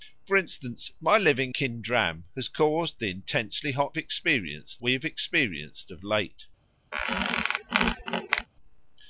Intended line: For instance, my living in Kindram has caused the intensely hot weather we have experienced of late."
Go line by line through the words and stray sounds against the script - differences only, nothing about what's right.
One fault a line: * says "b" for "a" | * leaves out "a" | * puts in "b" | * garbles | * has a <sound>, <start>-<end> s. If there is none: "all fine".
* leaves out "in"
* says "experienced" for "weather"
* has a squeak, 6.9-8.5 s